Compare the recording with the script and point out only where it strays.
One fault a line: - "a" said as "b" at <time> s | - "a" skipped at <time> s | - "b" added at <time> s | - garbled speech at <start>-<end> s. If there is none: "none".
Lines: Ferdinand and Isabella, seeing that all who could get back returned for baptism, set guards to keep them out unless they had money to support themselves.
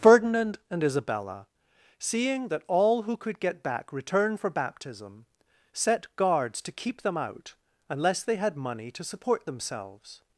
- "returned" said as "return" at 3.9 s